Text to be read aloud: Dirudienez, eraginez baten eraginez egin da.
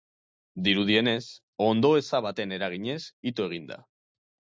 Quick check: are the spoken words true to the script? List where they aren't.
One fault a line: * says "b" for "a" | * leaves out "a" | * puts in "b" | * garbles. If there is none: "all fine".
* says "ondoeza" for "eraginez"
* puts in "ito"